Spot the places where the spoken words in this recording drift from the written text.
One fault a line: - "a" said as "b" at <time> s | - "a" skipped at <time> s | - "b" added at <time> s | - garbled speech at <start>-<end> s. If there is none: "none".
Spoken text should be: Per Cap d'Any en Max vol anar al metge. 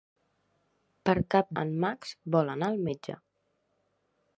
- "d'Any" skipped at 1.5 s